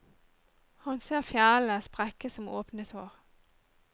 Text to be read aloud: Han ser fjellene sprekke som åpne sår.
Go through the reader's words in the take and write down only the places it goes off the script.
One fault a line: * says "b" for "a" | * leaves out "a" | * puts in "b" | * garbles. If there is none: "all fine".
all fine